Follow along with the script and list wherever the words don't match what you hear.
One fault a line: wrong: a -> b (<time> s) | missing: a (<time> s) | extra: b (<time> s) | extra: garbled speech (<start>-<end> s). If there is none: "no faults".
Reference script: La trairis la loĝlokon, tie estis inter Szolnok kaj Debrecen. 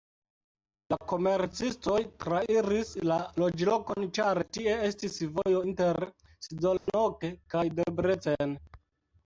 extra: komercistoj (1.1 s)
extra: ĉar (4.2 s)
extra: vojo (5.4 s)